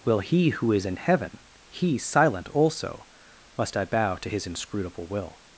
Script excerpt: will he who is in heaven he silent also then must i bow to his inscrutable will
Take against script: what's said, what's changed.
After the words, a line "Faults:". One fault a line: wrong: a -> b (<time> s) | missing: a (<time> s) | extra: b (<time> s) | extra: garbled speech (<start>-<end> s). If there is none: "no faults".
will he who is in heaven he silent also must i bow to his inscrutable will
Faults:
missing: then (3.0 s)